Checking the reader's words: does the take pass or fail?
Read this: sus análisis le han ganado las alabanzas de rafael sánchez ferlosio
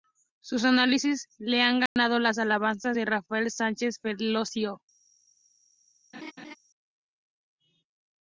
pass